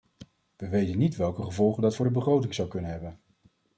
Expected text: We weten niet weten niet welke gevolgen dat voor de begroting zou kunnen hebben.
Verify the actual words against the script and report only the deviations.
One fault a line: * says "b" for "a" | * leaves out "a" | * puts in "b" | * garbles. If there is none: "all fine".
* leaves out "weten niet"